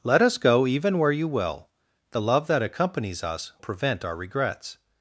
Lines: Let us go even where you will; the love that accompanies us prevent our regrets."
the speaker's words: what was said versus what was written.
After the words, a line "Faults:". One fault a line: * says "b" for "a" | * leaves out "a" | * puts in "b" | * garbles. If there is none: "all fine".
Let us go even where you will; the love that accompanies us prevent our regrets."
Faults:
all fine